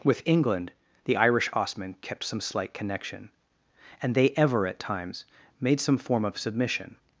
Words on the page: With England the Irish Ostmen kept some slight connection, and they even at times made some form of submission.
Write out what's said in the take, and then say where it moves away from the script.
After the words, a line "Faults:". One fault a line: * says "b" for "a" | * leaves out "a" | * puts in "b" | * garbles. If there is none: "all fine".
With England the Irish Ostmen kept some slight connection, and they ever at times made some form of submission.
Faults:
* says "ever" for "even"